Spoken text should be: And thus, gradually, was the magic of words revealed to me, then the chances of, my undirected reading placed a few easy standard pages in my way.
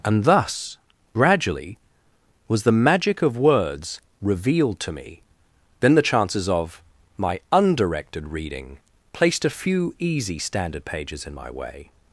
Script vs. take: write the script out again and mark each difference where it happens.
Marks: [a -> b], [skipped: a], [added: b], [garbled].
And thus, gradually, was the magic of words revealed to me, then the chances of, my undirected reading placed a few easy standard pages in my way.